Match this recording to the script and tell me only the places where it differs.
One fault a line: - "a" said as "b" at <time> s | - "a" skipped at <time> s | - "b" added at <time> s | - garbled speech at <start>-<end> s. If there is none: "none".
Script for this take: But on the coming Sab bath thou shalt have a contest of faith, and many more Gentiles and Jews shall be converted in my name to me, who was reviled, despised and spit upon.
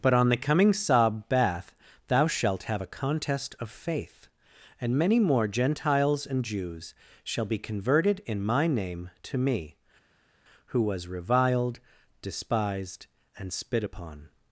none